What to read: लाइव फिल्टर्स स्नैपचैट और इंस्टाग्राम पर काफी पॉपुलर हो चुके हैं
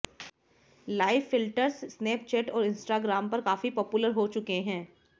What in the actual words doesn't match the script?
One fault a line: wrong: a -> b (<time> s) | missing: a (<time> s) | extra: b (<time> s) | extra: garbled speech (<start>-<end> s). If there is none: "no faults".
no faults